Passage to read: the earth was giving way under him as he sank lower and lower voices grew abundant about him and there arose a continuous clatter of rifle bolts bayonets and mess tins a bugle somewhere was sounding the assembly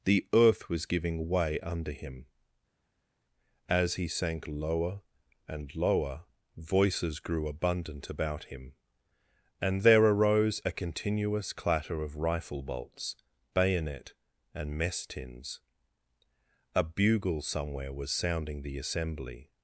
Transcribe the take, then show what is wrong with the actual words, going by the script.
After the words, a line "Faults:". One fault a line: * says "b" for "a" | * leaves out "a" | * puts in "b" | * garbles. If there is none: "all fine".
the earth was giving way under him as he sank lower and lower voices grew abundant about him and there arose a continuous clatter of rifle bolts bayonet and mess tins a bugle somewhere was sounding the assembly
Faults:
* says "bayonet" for "bayonets"